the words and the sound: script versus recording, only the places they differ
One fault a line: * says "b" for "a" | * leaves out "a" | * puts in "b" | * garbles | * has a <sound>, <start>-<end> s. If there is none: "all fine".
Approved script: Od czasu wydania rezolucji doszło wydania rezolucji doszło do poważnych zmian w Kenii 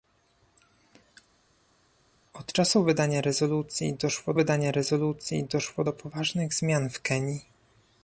all fine